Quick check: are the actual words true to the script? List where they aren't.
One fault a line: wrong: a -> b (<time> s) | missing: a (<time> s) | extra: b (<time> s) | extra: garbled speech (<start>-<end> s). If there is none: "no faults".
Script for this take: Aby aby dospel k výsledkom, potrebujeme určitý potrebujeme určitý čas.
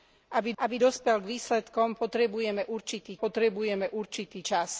no faults